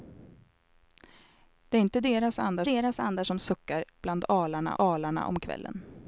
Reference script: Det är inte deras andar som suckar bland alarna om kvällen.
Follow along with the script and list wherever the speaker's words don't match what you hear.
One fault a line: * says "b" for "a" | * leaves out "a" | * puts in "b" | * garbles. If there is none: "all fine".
* puts in "deras andar"
* puts in "alarna"